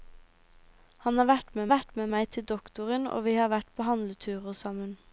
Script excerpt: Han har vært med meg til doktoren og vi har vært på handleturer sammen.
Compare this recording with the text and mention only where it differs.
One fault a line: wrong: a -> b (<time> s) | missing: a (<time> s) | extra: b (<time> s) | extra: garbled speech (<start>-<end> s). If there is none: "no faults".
extra: vært med (1.7 s)